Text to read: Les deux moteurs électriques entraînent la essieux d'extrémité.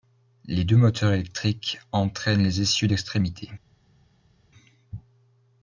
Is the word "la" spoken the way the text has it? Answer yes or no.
no